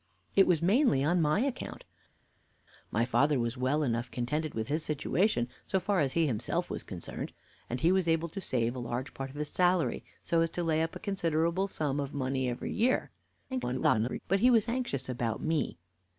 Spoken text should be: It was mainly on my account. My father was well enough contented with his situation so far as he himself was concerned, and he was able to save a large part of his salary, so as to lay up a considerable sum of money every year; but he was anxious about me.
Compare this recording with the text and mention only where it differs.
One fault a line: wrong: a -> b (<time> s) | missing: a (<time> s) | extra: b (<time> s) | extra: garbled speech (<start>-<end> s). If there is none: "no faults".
extra: garbled speech (13.5-14.2 s)